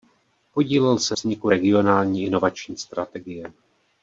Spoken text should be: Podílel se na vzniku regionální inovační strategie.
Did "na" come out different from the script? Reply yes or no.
yes